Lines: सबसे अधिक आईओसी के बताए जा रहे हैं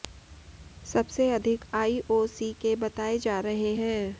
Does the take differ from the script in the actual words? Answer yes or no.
no